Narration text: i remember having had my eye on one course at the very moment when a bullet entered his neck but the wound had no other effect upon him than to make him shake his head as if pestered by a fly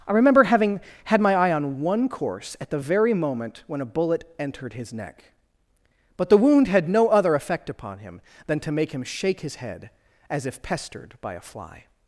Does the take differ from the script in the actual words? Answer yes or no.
no